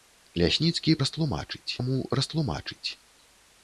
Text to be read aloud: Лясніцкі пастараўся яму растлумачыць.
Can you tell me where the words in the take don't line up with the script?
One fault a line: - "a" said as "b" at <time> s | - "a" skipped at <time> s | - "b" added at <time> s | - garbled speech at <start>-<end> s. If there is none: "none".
- "пастараўся" said as "растлумачыць" at 1.1 s